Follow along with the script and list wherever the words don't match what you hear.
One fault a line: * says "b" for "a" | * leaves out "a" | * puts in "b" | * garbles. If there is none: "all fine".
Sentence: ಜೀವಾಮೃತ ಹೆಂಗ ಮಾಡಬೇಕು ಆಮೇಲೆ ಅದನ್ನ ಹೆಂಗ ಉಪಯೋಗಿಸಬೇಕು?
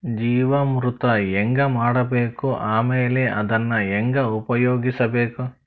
all fine